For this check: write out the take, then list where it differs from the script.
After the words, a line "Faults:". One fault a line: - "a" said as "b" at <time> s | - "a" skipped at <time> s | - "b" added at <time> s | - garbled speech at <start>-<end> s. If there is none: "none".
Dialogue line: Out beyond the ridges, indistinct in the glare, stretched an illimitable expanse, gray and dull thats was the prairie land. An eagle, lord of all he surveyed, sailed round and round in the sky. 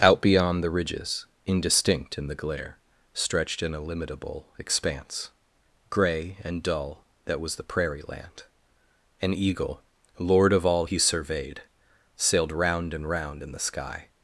Out beyond the ridges, indistinct in the glare, stretched an illimitable expanse, gray and dull that was the prairie land. An eagle, lord of all he surveyed, sailed round and round in the sky.
Faults:
- "thats" said as "that" at 7.2 s